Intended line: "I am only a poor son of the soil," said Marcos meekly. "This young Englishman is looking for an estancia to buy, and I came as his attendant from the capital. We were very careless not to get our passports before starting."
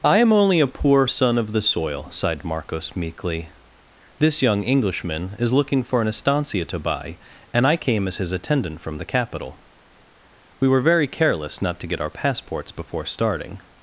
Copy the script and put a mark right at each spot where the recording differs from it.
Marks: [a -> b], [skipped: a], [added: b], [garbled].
"I am only a poor son of the soil," [said -> sighed] Marcos meekly. "This young Englishman is looking for an estancia to buy, and I came as his attendant from the capital. We were very careless not to get our passports before starting."